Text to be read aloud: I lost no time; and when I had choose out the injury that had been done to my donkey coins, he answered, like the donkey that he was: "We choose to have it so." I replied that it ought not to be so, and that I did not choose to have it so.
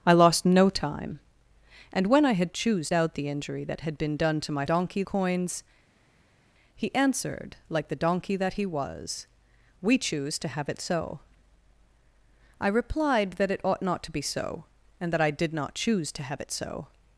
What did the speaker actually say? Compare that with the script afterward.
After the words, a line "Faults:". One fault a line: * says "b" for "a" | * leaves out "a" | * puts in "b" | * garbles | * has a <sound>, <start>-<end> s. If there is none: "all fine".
I lost no time; and when I had choose out the injury that had been done to my donkey coins, he answered, like the donkey that he was: "We choose to have it so." I replied that it ought not to be so, and that I did not choose to have it so.
Faults:
all fine